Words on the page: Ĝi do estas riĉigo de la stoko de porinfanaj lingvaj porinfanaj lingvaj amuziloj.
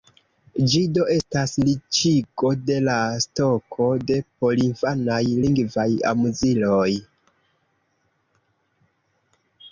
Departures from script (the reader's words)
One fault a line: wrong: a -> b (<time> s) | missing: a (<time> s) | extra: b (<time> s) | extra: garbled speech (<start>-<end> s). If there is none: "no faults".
missing: porinfanaj lingvaj (5.9 s)